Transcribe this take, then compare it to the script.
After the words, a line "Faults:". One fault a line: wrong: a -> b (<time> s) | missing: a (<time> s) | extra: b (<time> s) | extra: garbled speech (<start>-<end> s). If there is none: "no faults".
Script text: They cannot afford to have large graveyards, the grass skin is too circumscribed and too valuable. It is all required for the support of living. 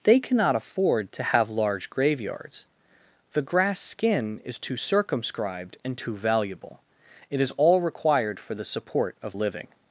They cannot afford to have large graveyards, the grass skin is too circumscribed and too valuable. It is all required for the support of living.
Faults:
no faults